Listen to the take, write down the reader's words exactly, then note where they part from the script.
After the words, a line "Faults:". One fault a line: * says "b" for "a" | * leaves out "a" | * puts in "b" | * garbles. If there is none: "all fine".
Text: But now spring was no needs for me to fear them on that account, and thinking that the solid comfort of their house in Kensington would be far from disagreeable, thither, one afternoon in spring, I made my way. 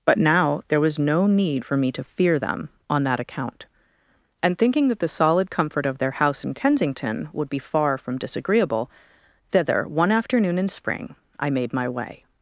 But now there was no need for me to fear them on that account, and thinking that the solid comfort of their house in Kensington would be far from disagreeable, thither, one afternoon in spring, I made my way.
Faults:
* says "there" for "spring"
* says "need" for "needs"